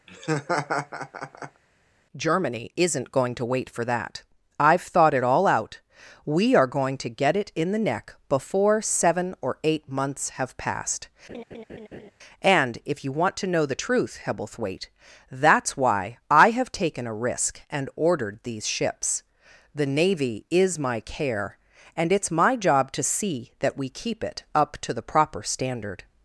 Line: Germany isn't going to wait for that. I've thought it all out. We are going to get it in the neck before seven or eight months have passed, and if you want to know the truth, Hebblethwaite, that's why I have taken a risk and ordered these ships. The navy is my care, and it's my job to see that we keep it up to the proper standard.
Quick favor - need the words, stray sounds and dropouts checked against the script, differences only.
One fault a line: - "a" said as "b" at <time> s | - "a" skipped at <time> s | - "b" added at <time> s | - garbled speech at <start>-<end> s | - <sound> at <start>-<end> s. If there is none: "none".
- laugh at 0.1-1.6 s
- laugh at 11.3-12.1 s